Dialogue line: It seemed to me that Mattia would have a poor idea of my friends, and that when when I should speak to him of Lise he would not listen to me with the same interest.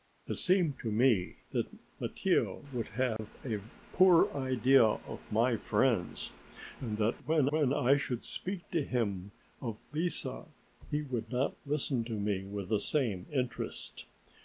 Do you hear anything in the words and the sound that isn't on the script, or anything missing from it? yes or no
yes